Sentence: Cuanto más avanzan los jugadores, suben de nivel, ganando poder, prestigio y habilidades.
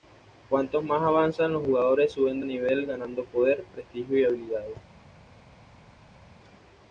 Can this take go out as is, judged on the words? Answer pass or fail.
pass